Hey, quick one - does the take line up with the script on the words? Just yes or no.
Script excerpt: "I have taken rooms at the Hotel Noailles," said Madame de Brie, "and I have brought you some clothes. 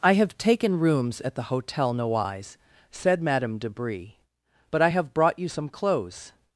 no